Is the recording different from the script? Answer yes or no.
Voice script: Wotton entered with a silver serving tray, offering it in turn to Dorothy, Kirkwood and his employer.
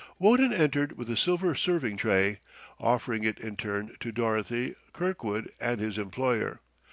no